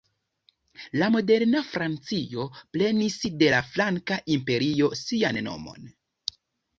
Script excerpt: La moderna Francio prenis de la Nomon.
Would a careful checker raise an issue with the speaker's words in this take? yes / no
yes